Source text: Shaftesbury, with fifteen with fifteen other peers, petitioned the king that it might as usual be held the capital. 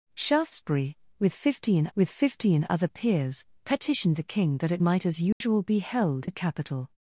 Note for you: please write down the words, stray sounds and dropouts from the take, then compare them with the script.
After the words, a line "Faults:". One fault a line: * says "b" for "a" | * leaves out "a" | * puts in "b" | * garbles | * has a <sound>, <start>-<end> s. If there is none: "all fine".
Shaftesbury, with fifteen with fifteen other peers, petitioned the king that it might as usual be held the capital.
Faults:
* has a dropout, 5.3-5.4 s